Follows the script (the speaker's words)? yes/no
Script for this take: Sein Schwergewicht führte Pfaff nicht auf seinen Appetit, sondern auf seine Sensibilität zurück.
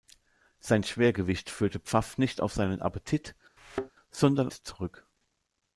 no